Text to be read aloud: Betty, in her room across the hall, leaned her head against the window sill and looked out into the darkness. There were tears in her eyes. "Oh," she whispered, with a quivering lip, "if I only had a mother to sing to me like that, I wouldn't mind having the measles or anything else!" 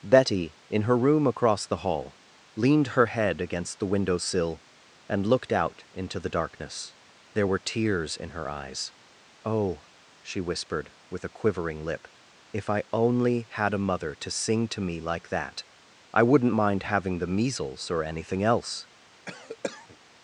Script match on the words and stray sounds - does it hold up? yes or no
no